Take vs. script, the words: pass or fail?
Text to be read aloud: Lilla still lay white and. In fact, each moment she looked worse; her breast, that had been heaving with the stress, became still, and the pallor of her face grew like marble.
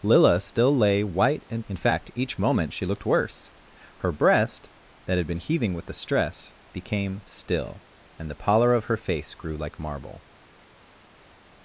pass